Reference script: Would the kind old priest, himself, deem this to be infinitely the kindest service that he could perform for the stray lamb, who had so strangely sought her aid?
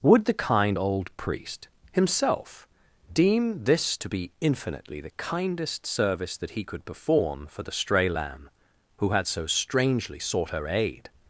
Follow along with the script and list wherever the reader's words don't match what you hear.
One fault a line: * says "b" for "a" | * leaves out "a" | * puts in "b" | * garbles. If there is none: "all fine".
all fine